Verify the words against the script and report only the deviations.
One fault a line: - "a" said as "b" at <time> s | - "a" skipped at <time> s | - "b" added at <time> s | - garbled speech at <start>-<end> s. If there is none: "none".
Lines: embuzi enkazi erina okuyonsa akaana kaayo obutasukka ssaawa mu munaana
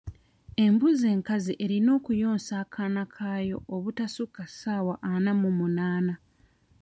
- "ana" added at 5.1 s